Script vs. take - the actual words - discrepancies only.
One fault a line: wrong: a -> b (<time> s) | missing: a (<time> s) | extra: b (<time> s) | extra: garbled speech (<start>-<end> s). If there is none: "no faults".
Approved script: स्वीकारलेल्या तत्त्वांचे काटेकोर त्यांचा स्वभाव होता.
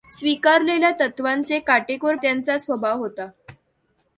no faults